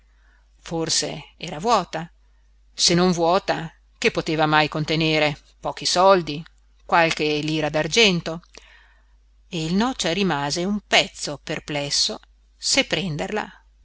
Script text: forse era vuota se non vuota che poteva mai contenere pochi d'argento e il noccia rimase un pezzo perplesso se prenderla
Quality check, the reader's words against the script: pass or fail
fail